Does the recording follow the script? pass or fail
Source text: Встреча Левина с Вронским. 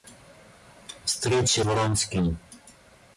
fail